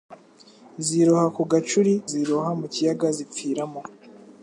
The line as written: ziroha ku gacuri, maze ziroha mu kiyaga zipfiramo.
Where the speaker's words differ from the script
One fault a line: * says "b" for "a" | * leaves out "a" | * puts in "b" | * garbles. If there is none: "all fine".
* leaves out "maze"